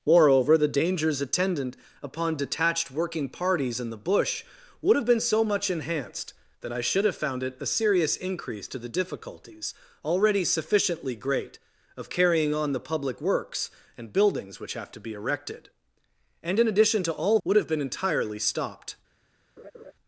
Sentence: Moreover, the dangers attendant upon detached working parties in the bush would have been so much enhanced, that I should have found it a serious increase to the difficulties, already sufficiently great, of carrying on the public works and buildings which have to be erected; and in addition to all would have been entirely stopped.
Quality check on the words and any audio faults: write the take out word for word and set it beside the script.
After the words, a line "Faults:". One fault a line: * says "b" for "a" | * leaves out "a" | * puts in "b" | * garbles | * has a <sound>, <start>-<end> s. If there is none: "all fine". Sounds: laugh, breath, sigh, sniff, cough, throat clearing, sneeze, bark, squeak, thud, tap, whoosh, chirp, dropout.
Moreover, the dangers attendant upon detached working parties in the bush would have been so much enhanced, that I should have found it a serious increase to the difficulties, already sufficiently great, of carrying on the public works and buildings which have to be erected; and in addition to all would have been entirely stopped.
Faults:
* has a laugh, 19.6-19.9 s